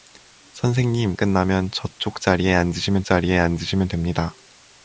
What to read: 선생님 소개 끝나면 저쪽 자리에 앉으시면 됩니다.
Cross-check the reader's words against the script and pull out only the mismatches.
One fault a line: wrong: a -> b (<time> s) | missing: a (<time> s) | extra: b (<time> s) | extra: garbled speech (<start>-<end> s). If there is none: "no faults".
missing: 소개 (1.1 s)
extra: 자리에 앉으시면 (3.0 s)